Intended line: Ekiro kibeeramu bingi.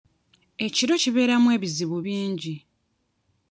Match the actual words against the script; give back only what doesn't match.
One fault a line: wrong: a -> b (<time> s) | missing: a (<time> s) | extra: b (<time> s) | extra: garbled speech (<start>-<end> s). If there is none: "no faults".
extra: ebizibu (1.6 s)